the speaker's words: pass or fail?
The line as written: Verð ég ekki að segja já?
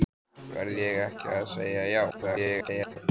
fail